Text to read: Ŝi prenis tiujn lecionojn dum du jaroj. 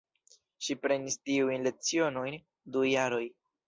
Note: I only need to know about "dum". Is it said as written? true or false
false